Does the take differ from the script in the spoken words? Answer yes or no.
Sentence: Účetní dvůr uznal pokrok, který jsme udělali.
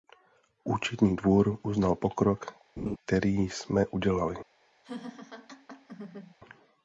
no